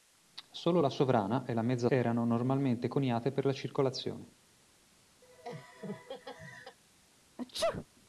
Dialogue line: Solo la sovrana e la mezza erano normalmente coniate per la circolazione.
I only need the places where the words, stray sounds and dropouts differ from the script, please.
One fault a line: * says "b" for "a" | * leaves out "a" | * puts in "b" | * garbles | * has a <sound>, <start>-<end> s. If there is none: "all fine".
* has a laugh, 5.2-6.8 s
* has a sneeze, 7.4-7.9 s